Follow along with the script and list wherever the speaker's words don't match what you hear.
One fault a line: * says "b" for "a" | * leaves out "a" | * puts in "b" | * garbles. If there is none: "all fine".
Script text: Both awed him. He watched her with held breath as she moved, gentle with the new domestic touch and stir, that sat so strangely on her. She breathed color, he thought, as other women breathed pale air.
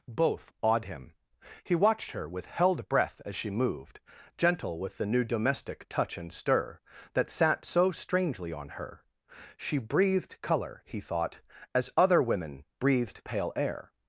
all fine